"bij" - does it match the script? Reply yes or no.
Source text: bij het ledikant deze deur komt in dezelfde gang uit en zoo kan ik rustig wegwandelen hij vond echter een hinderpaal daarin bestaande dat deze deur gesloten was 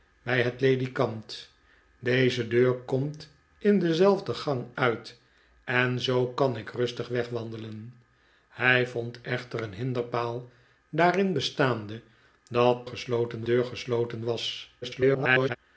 yes